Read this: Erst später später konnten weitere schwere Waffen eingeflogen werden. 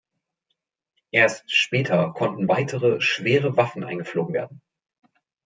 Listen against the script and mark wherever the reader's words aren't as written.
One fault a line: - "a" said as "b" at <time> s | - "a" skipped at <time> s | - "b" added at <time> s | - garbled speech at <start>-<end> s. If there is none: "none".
- "später" skipped at 2.1 s